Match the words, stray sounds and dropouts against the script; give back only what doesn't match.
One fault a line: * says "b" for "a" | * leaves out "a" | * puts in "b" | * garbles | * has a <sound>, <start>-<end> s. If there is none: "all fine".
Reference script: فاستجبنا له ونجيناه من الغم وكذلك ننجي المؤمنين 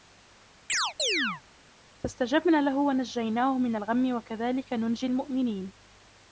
* has a chirp, 0.7-1.4 s